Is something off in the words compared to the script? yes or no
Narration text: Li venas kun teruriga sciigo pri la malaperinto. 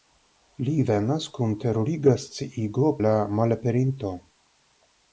yes